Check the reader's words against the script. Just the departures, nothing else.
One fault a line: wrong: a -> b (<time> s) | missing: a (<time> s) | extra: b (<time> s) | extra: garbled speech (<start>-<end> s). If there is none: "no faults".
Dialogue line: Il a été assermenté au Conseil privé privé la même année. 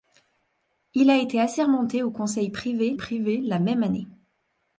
no faults